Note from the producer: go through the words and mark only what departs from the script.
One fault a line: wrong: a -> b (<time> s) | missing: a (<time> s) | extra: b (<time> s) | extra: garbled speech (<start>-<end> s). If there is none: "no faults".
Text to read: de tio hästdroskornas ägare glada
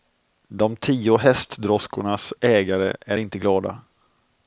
extra: är inte (3.0 s)